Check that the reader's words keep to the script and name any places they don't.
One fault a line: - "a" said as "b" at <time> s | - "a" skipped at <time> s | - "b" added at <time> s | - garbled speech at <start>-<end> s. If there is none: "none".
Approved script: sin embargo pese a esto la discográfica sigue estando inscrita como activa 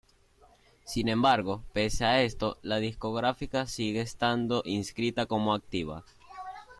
none